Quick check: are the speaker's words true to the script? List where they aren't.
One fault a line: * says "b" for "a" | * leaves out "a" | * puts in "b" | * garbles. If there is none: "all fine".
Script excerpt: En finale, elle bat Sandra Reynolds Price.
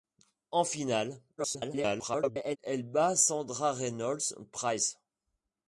* garbles